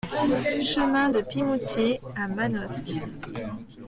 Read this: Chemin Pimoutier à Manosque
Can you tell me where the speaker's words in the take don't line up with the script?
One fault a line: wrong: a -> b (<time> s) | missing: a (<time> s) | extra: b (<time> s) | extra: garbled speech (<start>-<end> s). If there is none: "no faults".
extra: de (1.1 s)